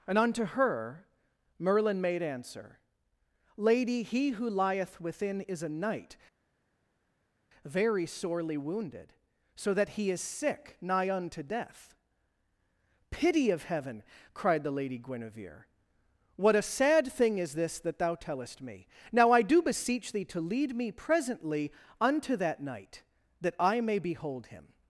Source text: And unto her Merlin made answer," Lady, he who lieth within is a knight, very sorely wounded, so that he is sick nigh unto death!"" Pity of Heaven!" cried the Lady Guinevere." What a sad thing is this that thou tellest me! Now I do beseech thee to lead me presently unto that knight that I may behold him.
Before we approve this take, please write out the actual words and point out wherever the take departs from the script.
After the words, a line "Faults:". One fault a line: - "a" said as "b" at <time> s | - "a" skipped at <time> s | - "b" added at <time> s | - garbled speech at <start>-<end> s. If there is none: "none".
And unto her Merlin made answer," Lady, he who lieth within is a knight, very sorely wounded, so that he is sick nigh unto death!"" Pity of Heaven!" cried the Lady Guinevere." What a sad thing is this that thou tellest me! Now I do beseech thee to lead me presently unto that knight that I may behold him.
Faults:
none